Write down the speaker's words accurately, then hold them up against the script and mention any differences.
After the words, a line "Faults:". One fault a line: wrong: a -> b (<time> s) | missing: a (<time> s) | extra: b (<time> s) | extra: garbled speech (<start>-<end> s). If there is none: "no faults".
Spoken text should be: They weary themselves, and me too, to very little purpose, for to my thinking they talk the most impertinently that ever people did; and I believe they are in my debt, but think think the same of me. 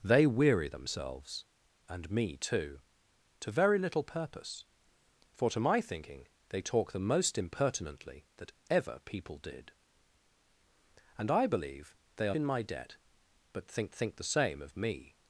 They weary themselves, and me too, to very little purpose, for to my thinking they talk the most impertinently that ever people did; and I believe they are in my debt, but think think the same of me.
Faults:
no faults